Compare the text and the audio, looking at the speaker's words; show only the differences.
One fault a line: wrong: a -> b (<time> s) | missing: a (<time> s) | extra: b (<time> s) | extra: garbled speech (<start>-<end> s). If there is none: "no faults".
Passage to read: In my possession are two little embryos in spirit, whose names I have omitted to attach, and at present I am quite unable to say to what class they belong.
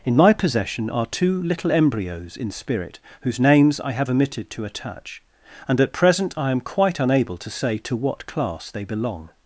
no faults